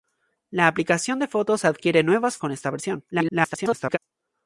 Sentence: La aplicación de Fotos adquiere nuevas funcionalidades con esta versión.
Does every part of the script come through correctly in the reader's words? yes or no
no